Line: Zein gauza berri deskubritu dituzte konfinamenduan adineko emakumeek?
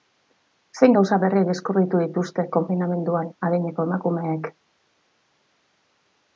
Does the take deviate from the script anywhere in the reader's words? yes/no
no